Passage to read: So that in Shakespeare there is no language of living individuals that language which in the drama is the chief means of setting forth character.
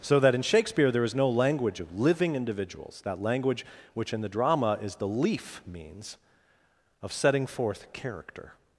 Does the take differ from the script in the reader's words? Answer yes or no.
yes